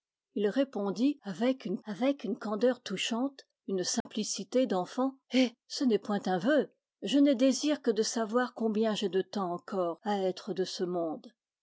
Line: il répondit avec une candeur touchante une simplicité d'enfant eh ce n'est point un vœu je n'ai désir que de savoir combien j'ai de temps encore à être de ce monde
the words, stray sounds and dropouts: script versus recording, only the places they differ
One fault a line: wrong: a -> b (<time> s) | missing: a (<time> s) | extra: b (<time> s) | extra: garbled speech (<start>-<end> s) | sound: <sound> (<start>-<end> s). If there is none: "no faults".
extra: avec une (1.8 s)
sound: dropout (4.0-4.1 s)